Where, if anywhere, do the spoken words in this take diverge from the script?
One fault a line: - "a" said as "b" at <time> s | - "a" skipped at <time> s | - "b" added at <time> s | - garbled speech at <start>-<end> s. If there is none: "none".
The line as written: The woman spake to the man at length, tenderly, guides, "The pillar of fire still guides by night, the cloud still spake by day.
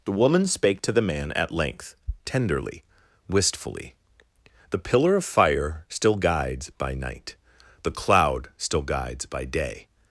- "guides" said as "wistfully" at 3.3 s
- "spake" said as "guides" at 8.8 s